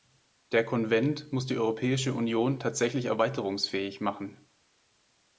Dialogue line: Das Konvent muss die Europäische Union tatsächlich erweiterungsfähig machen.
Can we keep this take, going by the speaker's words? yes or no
no